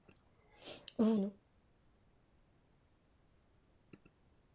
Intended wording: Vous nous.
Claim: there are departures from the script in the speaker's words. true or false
false